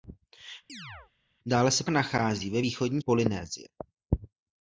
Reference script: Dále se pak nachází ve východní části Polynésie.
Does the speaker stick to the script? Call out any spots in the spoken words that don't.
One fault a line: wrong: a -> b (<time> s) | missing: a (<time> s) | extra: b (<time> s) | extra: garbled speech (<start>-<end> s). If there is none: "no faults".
missing: pak (1.8 s)
missing: části (3.0 s)